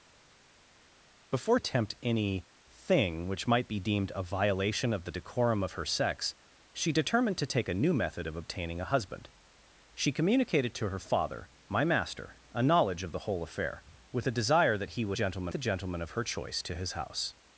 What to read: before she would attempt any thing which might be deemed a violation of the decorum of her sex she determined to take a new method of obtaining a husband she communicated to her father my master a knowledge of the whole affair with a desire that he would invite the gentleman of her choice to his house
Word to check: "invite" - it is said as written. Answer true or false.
false